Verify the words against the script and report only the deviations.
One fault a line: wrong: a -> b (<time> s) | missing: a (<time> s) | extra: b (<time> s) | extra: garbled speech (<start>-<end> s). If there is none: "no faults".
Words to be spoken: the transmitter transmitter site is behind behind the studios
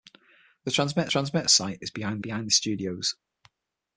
no faults